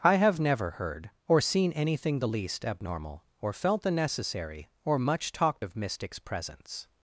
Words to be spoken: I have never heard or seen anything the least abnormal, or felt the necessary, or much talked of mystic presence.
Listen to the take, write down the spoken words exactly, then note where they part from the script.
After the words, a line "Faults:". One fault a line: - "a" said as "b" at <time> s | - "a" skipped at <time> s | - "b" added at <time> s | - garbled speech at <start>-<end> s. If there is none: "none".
I have never heard or seen anything the least abnormal, or felt the necessary, or much talked of mystics presence.
Faults:
- "mystic" said as "mystics" at 5.7 s